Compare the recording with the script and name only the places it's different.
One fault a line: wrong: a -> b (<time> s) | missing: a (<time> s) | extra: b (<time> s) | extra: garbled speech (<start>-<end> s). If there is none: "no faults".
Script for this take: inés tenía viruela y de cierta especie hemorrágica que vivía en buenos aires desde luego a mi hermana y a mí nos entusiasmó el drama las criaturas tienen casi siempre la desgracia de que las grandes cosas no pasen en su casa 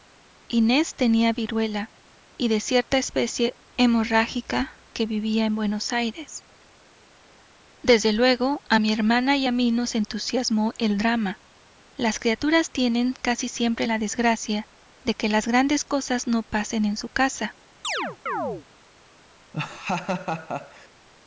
no faults